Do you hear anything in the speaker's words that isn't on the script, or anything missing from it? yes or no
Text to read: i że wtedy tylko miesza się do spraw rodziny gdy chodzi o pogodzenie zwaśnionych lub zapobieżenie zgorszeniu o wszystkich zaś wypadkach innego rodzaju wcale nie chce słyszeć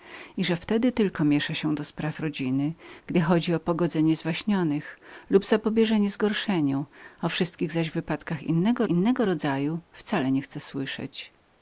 yes